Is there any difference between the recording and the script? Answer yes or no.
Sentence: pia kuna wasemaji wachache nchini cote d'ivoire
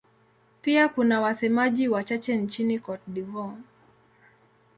no